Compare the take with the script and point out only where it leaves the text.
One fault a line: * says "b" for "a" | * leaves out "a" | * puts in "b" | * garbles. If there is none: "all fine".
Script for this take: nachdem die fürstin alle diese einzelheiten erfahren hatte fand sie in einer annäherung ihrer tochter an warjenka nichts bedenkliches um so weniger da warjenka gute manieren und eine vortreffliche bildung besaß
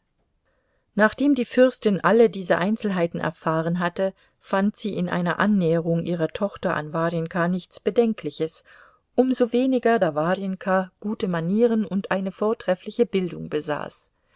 all fine